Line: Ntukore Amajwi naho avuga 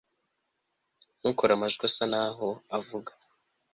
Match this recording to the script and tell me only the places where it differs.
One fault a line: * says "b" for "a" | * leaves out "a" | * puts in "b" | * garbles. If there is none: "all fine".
* puts in "asa"